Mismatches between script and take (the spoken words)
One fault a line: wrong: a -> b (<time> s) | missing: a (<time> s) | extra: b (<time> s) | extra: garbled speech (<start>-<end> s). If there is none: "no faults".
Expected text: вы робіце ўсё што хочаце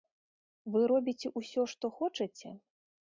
no faults